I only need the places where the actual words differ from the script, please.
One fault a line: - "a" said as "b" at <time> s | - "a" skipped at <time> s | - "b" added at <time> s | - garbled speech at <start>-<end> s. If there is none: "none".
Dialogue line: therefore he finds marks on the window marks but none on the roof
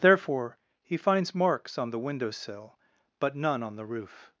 - "marks" said as "sill" at 2.3 s